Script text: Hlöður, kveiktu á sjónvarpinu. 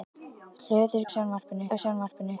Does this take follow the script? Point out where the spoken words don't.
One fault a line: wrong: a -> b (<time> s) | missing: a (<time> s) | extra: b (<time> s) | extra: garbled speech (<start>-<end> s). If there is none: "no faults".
wrong: kveiktu -> sjónvarpinu (1.2 s)